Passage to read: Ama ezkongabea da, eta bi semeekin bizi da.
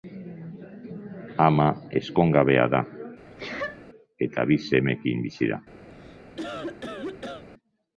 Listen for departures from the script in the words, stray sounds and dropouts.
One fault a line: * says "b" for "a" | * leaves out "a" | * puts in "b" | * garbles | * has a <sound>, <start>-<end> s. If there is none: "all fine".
* has a sneeze, 3.3-3.9 s
* has a cough, 5.9-7.4 s